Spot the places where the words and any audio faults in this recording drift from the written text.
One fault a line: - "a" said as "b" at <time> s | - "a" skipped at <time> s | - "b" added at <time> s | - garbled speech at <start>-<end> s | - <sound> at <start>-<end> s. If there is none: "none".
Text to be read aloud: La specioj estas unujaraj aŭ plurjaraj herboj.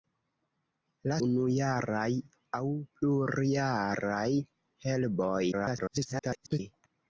- "specioj estas" skipped at 1.2 s
- garbled speech at 5.5-6.6 s